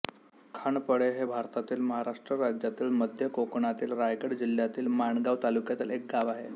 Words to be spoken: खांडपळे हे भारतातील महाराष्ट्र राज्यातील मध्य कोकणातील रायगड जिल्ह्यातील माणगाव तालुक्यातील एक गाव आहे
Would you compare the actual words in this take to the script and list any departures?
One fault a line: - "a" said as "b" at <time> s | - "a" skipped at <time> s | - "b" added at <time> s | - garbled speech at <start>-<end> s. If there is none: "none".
none